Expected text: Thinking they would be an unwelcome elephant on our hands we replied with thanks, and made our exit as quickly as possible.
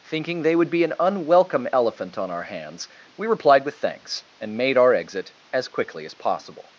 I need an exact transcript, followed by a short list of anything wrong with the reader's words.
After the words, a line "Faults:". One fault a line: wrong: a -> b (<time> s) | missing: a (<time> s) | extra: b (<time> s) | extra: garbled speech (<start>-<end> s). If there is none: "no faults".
Thinking they would be an unwelcome elephant on our hands we replied with thanks, and made our exit as quickly as possible.
Faults:
no faults